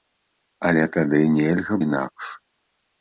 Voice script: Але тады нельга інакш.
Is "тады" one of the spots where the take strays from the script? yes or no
no